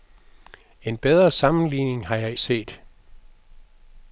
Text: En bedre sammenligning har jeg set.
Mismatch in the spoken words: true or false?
false